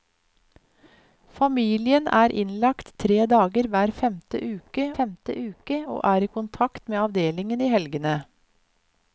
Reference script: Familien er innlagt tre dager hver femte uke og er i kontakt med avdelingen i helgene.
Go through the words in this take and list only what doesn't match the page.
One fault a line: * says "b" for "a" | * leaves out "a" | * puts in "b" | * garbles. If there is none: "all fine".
* puts in "femte uke"